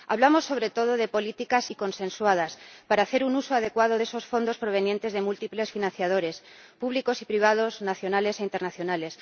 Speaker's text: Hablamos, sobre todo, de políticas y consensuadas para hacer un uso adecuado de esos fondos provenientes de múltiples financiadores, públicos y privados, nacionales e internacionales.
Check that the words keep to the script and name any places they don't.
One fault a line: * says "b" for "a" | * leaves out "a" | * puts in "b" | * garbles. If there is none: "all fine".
all fine